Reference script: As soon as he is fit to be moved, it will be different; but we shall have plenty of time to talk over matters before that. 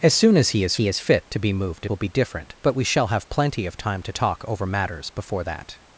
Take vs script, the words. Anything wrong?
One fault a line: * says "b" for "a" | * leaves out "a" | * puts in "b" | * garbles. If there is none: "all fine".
* puts in "he is"
* leaves out "it"